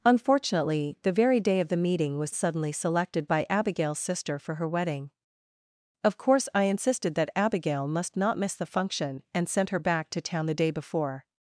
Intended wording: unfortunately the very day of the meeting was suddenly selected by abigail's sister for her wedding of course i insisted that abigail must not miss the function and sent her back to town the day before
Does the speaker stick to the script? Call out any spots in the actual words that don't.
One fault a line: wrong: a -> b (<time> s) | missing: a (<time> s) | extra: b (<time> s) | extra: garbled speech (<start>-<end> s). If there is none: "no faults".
no faults